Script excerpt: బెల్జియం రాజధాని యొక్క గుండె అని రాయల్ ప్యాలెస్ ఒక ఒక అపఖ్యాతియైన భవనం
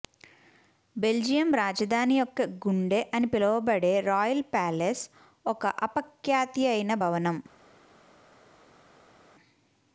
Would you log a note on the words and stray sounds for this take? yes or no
yes